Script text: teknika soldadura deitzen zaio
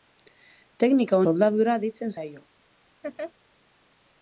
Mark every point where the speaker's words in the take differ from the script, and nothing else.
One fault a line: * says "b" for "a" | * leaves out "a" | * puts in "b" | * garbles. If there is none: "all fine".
all fine